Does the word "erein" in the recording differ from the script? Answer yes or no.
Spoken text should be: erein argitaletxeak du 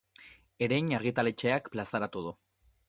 no